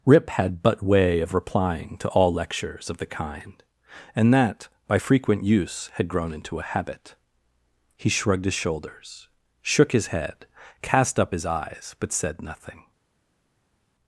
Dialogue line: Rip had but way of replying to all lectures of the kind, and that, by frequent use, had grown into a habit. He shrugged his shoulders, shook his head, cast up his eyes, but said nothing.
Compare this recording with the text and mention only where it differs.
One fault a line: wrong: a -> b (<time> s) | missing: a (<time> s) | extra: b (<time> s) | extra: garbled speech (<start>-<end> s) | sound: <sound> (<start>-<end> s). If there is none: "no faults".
no faults